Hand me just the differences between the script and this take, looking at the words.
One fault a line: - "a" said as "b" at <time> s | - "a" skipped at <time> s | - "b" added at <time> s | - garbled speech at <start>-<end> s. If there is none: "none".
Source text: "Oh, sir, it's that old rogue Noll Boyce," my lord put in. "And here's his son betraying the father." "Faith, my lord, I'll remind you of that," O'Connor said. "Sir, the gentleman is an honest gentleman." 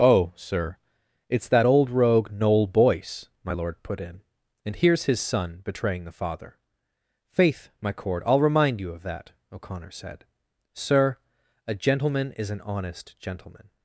- "lord" said as "cord" at 7.9 s
- "the" said as "a" at 11.7 s